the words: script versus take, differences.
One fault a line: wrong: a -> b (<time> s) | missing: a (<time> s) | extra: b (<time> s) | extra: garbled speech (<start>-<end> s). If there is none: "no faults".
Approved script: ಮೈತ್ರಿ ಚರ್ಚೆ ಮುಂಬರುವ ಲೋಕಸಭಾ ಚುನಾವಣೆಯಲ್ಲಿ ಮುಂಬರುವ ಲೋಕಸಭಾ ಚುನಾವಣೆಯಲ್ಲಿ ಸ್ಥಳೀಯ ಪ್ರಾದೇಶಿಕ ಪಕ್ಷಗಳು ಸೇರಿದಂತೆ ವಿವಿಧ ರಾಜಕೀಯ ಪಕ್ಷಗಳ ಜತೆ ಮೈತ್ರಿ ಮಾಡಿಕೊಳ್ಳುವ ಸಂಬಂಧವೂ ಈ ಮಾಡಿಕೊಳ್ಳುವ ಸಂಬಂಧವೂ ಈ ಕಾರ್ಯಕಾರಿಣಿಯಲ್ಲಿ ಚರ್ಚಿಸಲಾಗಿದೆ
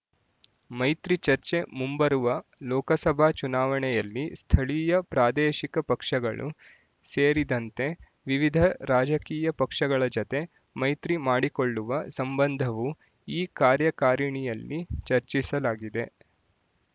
missing: ಮುಂಬರುವ ಲೋಕಸಭಾ ಚುನಾವಣೆಯಲ್ಲಿ (4.2 s)
missing: ಮಾಡಿಕೊಳ್ಳುವ ಸಂಬಂಧವೂ ಈ (13.4 s)